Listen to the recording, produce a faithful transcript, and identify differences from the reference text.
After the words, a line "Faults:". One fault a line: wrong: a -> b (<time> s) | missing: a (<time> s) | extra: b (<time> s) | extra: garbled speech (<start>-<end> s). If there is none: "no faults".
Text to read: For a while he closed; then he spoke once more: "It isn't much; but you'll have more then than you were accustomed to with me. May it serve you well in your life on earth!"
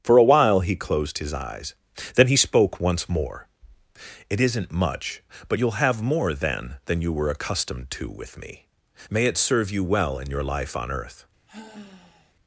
For a while he closed his eyes; then he spoke once more: "It isn't much; but you'll have more then than you were accustomed to with me. May it serve you well in your life on earth!"
Faults:
extra: his eyes (1.2 s)